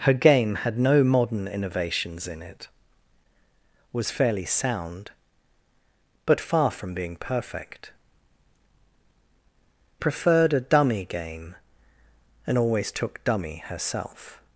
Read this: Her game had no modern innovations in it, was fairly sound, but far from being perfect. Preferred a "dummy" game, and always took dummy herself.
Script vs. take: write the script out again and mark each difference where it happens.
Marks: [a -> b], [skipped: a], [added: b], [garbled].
Her game had no modern innovations in it, was fairly sound, but far from being perfect. Preferred a "dummy" game, and always took dummy herself.